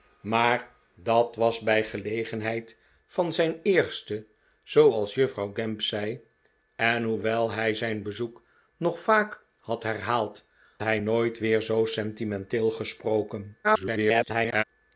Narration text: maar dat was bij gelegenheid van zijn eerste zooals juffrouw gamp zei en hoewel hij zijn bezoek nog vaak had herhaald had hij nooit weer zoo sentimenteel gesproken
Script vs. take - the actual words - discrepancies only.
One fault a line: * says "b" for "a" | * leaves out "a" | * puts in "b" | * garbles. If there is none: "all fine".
* leaves out "had"
* garbles